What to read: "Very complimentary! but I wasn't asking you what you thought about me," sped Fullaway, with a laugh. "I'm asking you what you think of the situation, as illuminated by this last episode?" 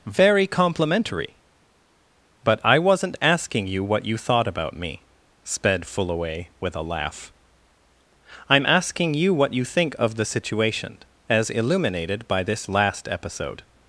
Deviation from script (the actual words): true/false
false